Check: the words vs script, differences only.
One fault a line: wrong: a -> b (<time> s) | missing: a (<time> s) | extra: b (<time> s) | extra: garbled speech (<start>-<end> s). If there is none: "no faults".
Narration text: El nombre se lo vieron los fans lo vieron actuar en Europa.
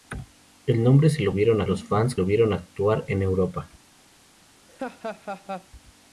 no faults